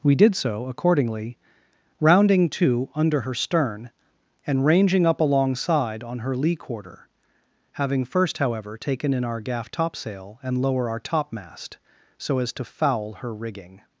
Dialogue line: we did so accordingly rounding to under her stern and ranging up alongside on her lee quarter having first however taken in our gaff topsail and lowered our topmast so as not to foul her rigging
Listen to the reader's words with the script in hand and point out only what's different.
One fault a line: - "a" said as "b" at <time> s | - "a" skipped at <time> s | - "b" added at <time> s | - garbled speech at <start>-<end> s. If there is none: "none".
- "lowered" said as "lower" at 10.6 s
- "not" skipped at 12.5 s